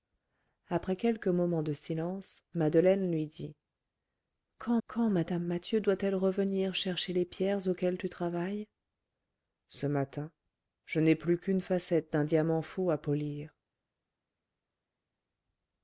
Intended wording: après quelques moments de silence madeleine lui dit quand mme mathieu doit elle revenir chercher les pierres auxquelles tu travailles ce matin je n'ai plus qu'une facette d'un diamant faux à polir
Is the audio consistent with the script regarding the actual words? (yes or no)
no